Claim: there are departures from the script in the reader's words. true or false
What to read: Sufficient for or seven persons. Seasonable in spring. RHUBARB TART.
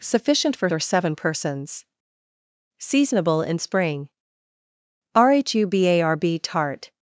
false